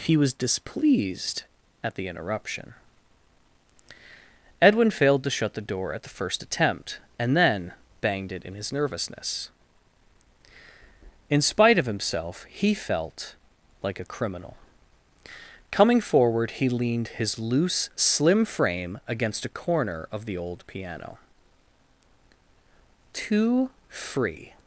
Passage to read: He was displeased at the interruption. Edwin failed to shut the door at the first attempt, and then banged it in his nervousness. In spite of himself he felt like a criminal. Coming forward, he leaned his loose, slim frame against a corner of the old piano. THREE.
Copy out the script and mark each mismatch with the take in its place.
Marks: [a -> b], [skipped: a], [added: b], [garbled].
He was displeased at the interruption. Edwin failed to shut the door at the first attempt, and then banged it in his nervousness. In spite of himself he felt like a criminal. Coming forward, he leaned his loose, slim frame against a corner of the old piano. [THREE. -> Too free]